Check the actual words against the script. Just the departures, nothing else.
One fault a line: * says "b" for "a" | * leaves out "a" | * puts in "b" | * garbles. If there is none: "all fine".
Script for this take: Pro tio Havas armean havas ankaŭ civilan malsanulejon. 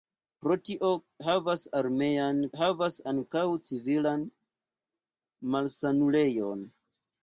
all fine